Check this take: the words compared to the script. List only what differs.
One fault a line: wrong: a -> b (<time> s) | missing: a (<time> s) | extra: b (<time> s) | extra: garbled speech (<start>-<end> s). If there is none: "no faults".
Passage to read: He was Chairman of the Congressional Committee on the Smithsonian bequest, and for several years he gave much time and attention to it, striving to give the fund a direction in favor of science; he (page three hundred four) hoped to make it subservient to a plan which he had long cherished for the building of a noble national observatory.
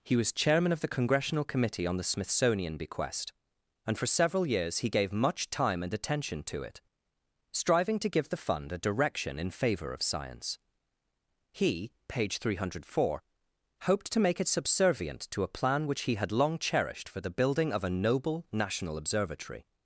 no faults